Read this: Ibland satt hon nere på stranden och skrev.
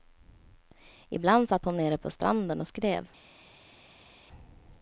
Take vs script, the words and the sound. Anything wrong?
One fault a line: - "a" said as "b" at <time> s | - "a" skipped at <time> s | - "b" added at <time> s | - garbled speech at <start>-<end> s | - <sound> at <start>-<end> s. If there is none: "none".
none